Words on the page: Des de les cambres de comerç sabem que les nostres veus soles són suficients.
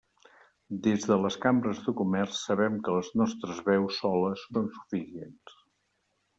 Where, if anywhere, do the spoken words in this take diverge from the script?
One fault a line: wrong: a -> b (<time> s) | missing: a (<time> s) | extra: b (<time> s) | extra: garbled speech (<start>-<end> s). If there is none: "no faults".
no faults